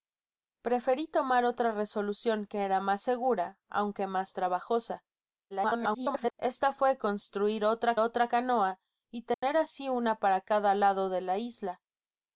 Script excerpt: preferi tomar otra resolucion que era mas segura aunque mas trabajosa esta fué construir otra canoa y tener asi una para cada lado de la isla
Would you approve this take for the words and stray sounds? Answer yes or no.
no